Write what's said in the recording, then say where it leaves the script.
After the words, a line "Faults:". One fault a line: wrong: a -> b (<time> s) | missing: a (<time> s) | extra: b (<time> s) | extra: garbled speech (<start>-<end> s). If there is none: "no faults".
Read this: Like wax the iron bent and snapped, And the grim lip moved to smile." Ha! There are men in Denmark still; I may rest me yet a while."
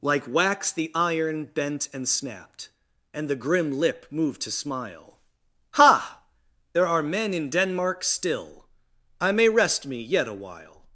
Like wax the iron bent and snapped, And the grim lip moved to smile." Ha! There are men in Denmark still; I may rest me yet a while."
Faults:
no faults